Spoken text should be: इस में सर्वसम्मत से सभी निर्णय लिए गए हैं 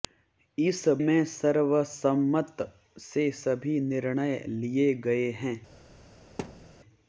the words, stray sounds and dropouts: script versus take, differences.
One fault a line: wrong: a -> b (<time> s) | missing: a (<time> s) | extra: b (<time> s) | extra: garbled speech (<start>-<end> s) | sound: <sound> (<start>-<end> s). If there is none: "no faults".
sound: thud (6.4-6.7 s)